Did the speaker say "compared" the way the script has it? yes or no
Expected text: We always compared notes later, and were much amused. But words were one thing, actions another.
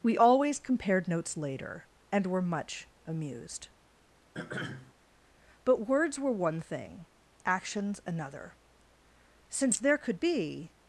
yes